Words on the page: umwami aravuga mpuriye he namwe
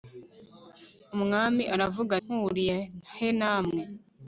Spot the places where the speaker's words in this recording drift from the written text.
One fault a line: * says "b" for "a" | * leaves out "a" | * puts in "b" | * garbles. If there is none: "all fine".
all fine